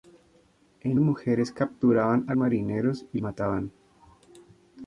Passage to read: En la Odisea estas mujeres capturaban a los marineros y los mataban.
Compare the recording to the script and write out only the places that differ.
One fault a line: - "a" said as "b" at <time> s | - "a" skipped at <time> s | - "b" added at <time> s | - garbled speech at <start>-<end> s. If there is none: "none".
- "la Odisea estas" skipped at 1.0 s
- "los" skipped at 2.3 s
- "los" skipped at 3.2 s